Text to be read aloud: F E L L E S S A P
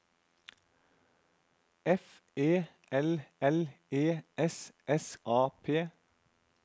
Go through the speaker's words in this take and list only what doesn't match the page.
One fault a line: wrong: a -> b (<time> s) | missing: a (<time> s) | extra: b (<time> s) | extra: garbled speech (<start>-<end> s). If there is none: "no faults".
no faults